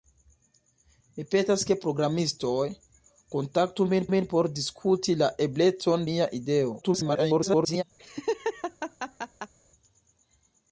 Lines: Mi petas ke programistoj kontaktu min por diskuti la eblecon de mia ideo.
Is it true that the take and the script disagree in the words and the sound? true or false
true